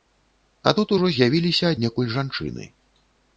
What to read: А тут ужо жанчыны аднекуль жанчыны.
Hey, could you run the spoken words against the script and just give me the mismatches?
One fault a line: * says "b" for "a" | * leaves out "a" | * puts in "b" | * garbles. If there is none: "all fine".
* says "з'явіліся" for "жанчыны"